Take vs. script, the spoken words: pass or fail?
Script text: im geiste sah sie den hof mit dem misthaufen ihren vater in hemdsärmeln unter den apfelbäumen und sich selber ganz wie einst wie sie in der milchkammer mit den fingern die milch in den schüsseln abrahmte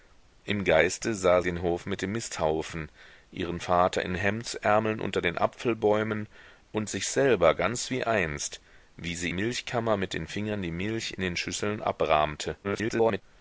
fail